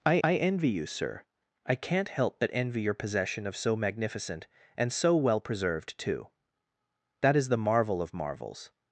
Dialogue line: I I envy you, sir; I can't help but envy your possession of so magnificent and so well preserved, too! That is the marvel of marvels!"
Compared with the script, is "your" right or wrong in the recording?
right